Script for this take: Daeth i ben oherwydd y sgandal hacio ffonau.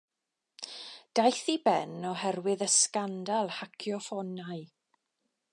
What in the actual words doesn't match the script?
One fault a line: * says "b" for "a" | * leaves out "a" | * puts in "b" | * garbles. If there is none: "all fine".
all fine